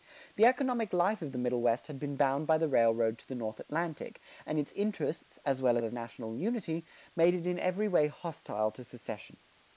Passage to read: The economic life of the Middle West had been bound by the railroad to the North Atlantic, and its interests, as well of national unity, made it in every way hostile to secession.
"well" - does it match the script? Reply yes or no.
yes